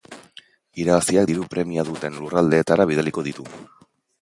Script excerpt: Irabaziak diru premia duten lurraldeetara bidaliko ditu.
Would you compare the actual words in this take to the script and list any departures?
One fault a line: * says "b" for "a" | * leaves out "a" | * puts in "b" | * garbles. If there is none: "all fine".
all fine